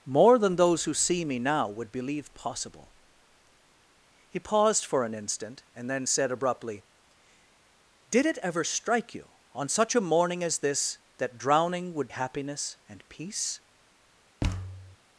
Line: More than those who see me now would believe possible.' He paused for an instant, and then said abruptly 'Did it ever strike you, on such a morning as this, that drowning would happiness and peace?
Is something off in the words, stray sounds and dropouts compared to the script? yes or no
yes